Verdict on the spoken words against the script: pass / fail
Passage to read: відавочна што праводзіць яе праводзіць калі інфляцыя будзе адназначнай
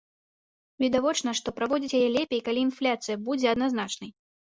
fail